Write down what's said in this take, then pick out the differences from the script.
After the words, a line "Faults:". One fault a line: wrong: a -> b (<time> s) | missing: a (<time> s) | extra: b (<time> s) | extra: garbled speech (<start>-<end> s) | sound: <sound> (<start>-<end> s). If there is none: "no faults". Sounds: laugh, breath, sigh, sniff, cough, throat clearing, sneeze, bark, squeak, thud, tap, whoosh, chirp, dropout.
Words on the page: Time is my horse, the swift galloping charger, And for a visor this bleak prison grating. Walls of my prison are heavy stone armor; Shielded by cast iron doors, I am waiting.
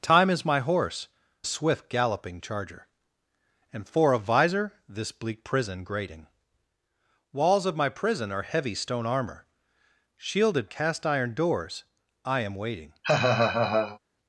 Time is my horse, swift galloping charger, And for a visor this bleak prison grating. Walls of my prison are heavy stone armor; Shielded cast iron doors, I am waiting.
Faults:
missing: the (1.1 s)
missing: by (10.7 s)
sound: laugh (13.0-14.0 s)